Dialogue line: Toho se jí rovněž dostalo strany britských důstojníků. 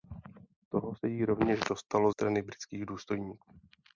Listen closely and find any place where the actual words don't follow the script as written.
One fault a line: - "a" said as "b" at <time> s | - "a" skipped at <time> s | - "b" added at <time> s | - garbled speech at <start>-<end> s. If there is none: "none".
none